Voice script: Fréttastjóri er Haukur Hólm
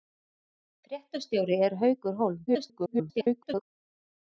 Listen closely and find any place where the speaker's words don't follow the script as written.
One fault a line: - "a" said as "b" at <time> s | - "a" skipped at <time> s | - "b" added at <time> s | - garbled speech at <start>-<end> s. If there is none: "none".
- garbled speech at 2.5-3.6 s